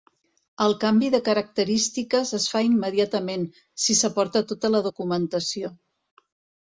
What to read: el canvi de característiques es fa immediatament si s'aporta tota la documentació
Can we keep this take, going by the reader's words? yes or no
yes